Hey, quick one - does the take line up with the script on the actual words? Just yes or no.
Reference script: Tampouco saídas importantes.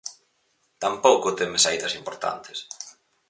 no